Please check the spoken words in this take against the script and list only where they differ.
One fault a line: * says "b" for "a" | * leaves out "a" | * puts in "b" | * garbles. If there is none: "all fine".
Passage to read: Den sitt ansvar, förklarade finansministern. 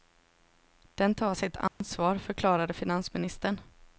* puts in "tar"